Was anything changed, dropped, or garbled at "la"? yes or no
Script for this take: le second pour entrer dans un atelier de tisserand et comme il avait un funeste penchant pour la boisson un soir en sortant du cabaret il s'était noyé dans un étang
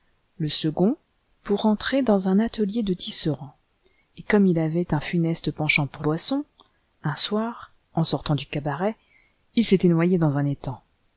yes